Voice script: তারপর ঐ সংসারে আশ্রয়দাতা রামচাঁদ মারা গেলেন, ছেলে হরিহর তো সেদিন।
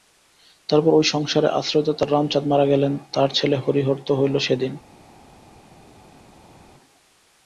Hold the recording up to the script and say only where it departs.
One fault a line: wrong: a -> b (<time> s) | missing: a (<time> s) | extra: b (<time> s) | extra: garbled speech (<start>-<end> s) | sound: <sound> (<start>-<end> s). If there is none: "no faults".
extra: তাঁর (3.1 s)
extra: হইল (4.2 s)